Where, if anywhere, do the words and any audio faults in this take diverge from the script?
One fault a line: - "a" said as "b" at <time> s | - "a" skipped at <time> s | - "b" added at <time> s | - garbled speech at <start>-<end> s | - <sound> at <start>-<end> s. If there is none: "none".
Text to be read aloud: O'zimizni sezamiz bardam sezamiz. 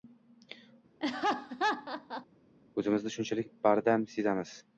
- laugh at 1.0-2.3 s
- "sezamiz" said as "shunchalik" at 3.2 s